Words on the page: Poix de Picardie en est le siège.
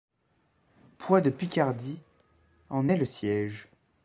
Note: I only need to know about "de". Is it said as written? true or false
true